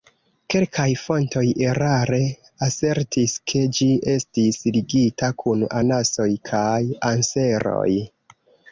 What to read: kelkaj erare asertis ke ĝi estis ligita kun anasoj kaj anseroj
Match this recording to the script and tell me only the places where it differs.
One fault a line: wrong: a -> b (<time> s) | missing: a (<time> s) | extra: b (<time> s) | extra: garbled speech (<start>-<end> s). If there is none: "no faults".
extra: fontoj (1.0 s)